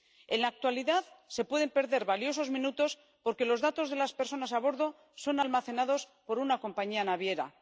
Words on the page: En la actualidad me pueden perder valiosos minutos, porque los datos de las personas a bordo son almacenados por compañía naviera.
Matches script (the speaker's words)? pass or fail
fail